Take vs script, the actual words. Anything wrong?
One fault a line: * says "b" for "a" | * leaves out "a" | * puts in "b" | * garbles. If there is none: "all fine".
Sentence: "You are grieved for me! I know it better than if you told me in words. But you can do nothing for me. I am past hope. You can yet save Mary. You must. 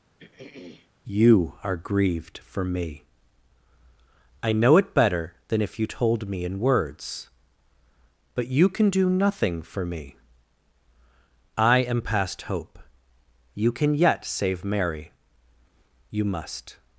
all fine